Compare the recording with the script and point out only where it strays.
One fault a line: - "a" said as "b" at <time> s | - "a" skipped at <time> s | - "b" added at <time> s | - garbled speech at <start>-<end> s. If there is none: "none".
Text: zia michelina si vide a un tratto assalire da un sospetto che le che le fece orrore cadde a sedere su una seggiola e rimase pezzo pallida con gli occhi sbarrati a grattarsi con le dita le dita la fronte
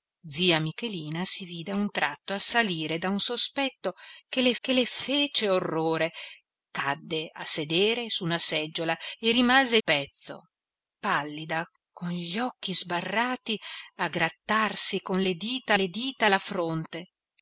none